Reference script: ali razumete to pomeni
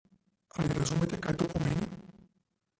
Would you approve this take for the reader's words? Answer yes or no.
no